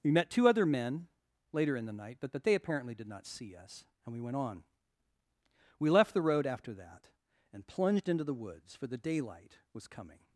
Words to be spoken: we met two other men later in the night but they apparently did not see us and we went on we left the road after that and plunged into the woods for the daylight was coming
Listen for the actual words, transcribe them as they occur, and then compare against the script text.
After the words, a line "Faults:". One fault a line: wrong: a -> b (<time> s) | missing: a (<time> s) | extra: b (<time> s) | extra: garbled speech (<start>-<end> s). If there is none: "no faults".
we met two other men later in the night but but they apparently did not see us and we went on we left the road after that and plunged into the woods for the daylight was coming
Faults:
extra: but (2.3 s)